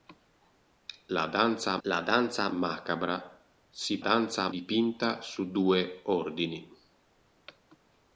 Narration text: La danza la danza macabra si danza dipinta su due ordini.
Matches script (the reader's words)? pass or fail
pass